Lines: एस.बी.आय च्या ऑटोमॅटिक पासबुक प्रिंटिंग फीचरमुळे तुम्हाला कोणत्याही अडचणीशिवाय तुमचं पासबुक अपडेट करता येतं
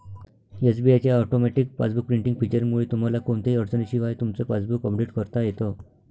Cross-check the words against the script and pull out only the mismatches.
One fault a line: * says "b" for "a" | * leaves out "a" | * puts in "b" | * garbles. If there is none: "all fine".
all fine